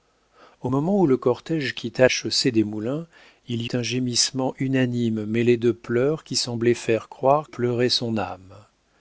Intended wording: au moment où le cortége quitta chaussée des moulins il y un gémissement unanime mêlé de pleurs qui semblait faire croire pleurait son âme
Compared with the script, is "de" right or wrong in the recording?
right